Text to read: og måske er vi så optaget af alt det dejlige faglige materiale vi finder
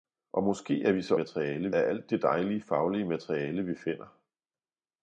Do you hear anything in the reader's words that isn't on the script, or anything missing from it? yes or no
yes